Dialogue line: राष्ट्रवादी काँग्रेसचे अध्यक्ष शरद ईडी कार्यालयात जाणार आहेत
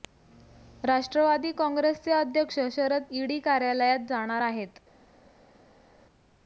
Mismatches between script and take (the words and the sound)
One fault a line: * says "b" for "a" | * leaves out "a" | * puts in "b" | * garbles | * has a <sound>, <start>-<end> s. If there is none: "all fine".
all fine